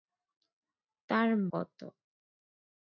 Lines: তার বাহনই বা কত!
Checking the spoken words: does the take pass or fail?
fail